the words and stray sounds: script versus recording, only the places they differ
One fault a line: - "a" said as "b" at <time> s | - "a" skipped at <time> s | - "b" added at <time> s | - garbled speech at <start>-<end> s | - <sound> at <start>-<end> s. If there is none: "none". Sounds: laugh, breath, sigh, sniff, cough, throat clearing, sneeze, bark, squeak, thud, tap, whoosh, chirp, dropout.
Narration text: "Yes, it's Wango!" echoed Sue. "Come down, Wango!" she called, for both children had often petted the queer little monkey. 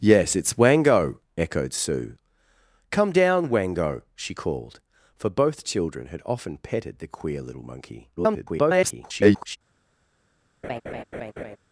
- garbled speech at 8.2-9.6 s
- laugh at 10.6-11.6 s